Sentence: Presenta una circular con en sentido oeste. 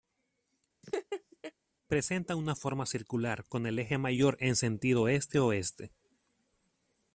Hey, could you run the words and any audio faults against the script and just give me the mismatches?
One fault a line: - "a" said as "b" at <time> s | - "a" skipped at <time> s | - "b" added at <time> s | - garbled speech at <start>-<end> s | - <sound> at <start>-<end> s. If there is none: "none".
- laugh at 0.8-1.5 s
- "forma" added at 2.5 s
- "el eje mayor" added at 3.6 s
- "este" added at 5.1 s